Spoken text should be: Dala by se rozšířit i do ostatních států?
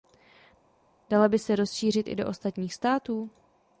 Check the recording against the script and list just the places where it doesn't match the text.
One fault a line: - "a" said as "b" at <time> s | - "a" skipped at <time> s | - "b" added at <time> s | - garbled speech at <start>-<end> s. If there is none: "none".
none